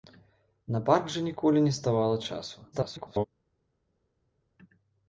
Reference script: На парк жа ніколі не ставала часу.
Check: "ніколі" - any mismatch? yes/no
no